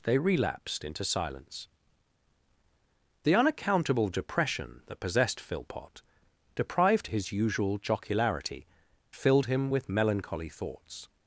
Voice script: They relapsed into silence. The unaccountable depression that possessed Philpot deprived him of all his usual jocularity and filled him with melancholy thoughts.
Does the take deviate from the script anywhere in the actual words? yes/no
yes